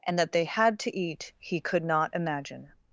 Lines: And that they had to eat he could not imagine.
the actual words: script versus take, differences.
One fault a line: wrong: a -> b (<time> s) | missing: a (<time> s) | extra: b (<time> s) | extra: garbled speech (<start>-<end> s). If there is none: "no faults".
no faults